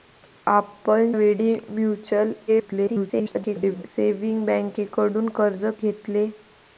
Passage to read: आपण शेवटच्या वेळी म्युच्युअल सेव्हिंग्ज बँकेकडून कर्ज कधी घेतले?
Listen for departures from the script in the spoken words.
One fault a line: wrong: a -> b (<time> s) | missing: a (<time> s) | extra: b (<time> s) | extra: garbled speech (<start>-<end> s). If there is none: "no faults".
missing: शेवटच्या (1.1 s)
extra: garbled speech (2.5-3.8 s)
missing: कधी (5.6 s)